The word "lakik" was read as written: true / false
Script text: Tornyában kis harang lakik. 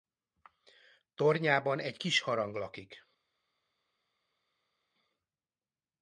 true